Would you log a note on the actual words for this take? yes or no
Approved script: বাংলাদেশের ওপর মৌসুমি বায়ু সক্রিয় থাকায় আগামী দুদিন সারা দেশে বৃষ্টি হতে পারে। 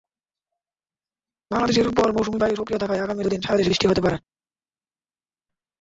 no